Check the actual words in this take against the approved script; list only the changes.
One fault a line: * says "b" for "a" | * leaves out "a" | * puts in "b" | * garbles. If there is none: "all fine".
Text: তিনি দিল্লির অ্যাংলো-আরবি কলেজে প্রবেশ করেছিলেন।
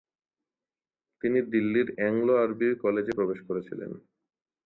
all fine